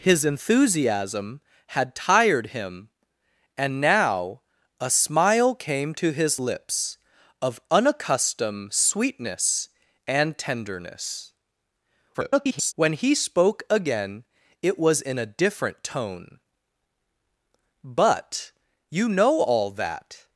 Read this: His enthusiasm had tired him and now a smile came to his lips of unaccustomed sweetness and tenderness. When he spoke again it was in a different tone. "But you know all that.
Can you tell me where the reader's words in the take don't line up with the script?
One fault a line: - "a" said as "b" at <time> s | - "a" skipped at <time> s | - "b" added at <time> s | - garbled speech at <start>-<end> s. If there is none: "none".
- garbled speech at 12.1-12.7 s